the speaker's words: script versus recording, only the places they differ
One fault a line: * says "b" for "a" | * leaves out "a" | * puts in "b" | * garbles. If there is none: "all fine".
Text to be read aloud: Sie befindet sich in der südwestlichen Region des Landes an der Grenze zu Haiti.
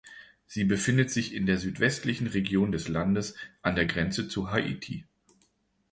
all fine